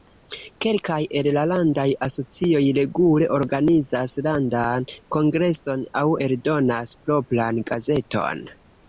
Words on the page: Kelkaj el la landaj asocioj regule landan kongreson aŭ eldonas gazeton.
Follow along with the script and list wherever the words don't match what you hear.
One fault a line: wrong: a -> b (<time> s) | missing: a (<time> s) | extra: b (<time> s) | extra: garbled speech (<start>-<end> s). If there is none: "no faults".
extra: organizas (3.4 s)
extra: propran (7.1 s)